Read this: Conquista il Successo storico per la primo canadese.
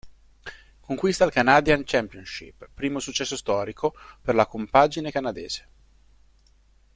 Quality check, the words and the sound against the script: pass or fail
fail